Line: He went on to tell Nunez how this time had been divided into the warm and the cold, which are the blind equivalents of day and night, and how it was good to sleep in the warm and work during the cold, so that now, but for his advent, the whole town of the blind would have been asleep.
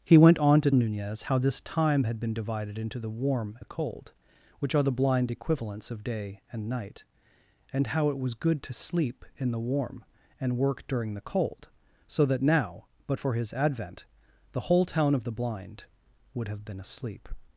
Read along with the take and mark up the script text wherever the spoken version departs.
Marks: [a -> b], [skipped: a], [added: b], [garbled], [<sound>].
He went on to [skipped: tell] Nunez how this time had been divided into the warm [skipped: and] the cold, which are the blind equivalents of day and night, and how it was good to sleep in the warm and work during the cold, so that now, but for his advent, the whole town of the blind would have been asleep.